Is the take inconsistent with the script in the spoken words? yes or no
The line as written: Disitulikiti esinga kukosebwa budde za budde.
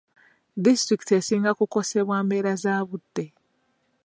yes